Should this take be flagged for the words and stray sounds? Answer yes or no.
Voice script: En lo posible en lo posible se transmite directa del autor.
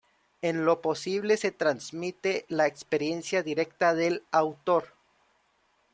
yes